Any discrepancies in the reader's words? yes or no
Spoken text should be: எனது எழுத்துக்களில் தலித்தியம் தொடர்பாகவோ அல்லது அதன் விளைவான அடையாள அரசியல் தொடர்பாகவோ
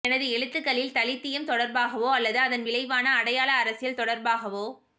no